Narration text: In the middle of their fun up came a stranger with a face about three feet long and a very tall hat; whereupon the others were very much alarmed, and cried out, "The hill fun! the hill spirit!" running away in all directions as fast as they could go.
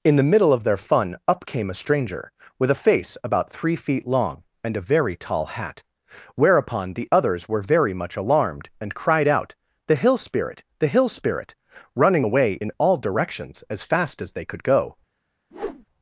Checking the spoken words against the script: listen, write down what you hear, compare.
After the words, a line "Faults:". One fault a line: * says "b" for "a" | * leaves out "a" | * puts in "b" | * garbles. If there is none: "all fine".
In the middle of their fun up came a stranger with a face about three feet long and a very tall hat; whereupon the others were very much alarmed, and cried out, "The hill spirit! the hill spirit!" running away in all directions as fast as they could go.
Faults:
* says "spirit" for "fun"